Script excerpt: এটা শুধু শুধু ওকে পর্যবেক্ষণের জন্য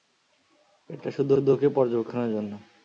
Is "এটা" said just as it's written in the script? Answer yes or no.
yes